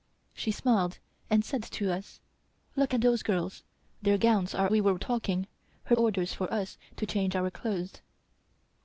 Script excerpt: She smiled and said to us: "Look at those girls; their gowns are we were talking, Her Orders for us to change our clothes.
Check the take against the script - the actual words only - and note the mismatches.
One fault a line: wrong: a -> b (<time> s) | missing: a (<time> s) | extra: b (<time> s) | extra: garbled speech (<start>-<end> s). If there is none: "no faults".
no faults